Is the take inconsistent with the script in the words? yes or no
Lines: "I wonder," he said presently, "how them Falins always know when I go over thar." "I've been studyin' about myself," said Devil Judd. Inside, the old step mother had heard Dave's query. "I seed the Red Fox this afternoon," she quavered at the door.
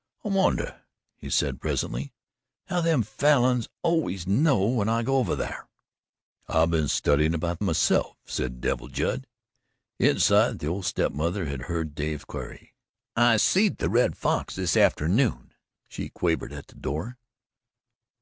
no